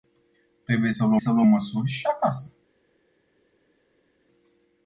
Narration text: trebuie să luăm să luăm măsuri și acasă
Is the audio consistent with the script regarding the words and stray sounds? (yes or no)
yes